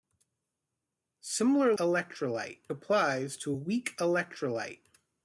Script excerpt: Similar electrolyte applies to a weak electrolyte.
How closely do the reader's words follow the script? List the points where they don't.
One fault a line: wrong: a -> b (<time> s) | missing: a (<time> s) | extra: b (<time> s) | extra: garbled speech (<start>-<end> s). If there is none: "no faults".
no faults